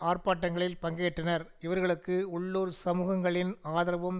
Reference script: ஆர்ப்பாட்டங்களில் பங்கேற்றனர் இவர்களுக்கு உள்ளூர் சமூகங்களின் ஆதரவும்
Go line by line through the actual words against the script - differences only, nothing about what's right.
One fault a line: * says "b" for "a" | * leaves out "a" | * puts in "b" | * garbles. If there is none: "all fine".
all fine